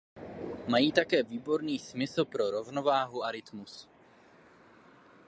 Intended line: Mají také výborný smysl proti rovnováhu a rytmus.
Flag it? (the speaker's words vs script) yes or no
yes